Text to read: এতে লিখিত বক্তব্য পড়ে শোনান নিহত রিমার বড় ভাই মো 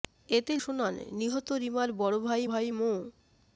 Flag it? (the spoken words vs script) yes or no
yes